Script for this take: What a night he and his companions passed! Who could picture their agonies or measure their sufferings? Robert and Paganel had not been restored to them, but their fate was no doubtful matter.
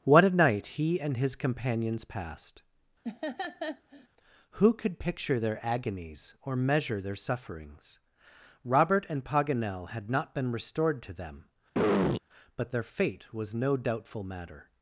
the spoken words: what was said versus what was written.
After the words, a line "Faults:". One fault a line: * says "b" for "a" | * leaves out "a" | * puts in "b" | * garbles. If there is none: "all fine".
What a night he and his companions passed! Who could picture their agonies or measure their sufferings? Robert and Paganel had not been restored to them, but their fate was no doubtful matter.
Faults:
all fine